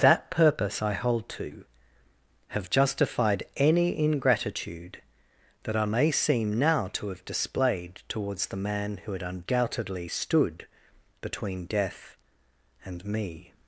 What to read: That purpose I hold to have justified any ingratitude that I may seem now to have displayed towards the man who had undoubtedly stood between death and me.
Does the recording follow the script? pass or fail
pass